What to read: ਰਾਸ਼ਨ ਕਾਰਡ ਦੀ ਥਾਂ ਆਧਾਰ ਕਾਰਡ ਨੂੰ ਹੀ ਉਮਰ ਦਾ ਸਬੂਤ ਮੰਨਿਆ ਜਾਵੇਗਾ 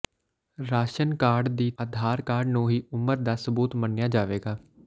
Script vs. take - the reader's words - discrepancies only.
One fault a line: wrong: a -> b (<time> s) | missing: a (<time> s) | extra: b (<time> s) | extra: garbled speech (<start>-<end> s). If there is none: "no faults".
missing: ਥਾਂ (1.7 s)